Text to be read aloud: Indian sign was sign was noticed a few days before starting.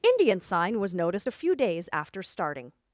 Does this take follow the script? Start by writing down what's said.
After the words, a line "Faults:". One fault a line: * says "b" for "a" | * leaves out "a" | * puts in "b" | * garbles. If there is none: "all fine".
Indian sign was noticed a few days after starting.
Faults:
* leaves out "sign was"
* says "after" for "before"